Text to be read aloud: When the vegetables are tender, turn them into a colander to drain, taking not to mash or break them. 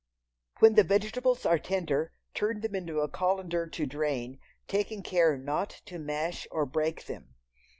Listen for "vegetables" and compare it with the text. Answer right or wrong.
right